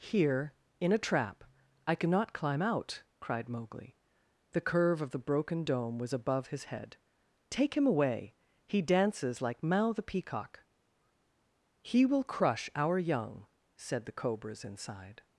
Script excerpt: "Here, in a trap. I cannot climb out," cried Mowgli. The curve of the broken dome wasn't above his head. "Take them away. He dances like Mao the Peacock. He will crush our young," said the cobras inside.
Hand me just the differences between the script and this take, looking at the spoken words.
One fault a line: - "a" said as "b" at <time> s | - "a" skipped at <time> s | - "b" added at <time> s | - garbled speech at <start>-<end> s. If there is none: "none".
- "wasn't" said as "was" at 6.0 s
- "them" said as "him" at 7.8 s